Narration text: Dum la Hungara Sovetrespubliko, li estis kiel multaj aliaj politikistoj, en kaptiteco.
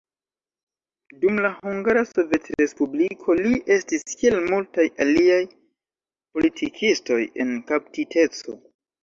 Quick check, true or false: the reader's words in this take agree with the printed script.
true